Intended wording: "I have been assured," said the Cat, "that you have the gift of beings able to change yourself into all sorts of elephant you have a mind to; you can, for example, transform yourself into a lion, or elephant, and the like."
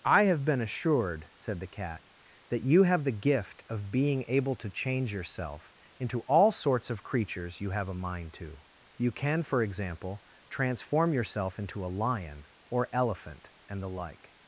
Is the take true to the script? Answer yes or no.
no